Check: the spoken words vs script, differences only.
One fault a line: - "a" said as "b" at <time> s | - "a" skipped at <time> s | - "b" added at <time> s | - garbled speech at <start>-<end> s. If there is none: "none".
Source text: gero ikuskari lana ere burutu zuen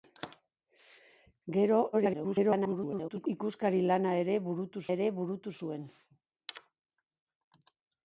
- garbled speech at 1.9-3.3 s
- "ere burutu" added at 5.0 s